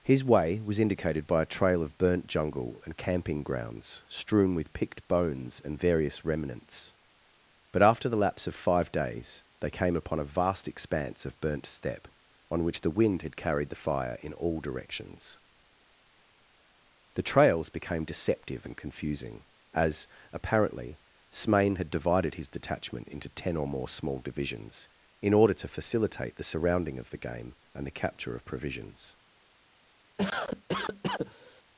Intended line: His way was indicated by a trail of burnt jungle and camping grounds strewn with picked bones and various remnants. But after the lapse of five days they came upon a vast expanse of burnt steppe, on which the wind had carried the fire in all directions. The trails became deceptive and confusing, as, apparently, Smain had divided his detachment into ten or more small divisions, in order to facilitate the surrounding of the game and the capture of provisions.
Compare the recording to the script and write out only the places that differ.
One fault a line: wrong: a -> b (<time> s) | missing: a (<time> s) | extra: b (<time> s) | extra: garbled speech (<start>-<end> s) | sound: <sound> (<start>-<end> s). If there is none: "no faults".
sound: cough (30.2-31.6 s)